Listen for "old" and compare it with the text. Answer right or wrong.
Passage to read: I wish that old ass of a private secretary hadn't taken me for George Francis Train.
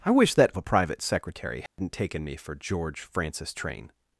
wrong